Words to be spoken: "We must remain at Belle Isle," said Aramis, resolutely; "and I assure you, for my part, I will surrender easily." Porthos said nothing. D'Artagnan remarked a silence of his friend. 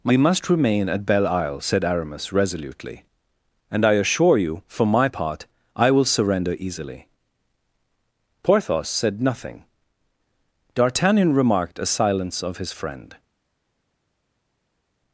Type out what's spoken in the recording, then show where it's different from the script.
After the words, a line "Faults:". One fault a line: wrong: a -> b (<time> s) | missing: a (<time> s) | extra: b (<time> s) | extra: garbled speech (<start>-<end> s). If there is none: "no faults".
"We must remain at Belle Isle," said Aramis, resolutely; "and I assure you, for my part, I will surrender easily." Porthos said nothing. D'Artagnan remarked a silence of his friend.
Faults:
no faults